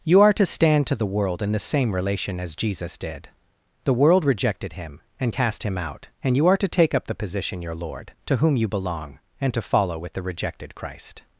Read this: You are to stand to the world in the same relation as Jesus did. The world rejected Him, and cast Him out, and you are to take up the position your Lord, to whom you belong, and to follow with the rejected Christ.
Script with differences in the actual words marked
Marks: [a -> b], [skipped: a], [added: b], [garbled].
You are to stand to the world in the same relation as Jesus did. The world rejected Him, and cast Him out, and you are to take up the position your Lord, to whom you belong, and to follow with the rejected Christ.